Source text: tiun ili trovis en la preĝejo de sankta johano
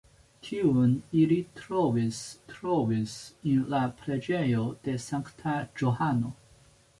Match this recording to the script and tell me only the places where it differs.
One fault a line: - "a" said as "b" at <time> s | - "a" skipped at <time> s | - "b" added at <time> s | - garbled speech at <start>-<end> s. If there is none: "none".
- "trovis" added at 2.5 s